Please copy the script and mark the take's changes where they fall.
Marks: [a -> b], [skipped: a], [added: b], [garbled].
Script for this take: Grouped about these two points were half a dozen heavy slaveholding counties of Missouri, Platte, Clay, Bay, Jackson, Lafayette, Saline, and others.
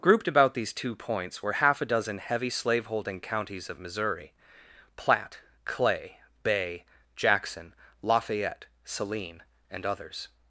Grouped about these two points were half a dozen heavy slaveholding counties of Missouri, Platte, Clay, Bay, Jackson, Lafayette, Saline, and others.